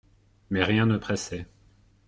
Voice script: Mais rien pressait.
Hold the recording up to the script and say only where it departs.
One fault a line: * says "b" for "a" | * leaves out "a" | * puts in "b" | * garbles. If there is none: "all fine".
* puts in "ne"